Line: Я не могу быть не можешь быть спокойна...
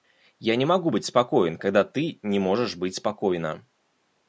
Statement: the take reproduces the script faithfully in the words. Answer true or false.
false